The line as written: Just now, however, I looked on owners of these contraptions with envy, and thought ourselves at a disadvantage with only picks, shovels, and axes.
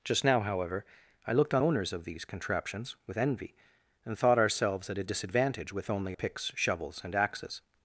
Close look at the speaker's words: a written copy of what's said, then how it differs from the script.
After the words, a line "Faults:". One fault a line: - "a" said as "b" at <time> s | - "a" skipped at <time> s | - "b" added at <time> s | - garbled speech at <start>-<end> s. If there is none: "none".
Just now, however, I looked on owners of these contraptions with envy, and thought ourselves at a disadvantage with only picks, shovels, and axes.
Faults:
none